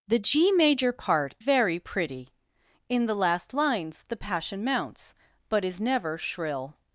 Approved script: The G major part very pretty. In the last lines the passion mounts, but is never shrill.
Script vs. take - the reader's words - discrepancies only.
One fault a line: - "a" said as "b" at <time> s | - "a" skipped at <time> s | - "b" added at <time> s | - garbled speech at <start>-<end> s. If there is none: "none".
none